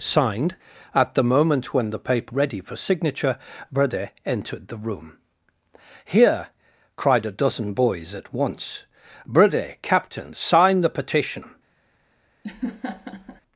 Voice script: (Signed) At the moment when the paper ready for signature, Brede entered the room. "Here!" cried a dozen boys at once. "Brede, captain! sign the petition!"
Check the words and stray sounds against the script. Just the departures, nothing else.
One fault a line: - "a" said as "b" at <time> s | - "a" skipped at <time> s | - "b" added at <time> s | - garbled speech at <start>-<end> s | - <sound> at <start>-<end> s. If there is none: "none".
- laugh at 12.4-13.4 s